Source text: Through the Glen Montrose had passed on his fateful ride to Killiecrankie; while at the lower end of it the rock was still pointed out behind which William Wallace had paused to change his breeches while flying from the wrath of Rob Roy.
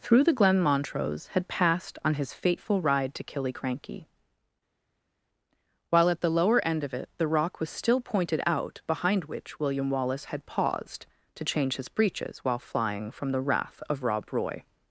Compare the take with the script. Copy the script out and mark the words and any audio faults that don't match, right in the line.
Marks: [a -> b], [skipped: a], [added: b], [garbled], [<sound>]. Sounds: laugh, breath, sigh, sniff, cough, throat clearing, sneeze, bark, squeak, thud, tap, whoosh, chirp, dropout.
Through the Glen Montrose had passed on his fateful ride to Killiecrankie; while at the lower end of it the rock was still pointed out behind which William Wallace had paused to change his breeches while flying from the wrath of Rob Roy.